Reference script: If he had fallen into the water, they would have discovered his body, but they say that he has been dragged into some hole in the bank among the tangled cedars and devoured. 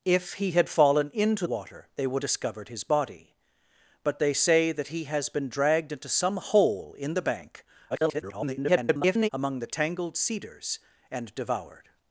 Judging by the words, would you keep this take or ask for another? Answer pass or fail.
fail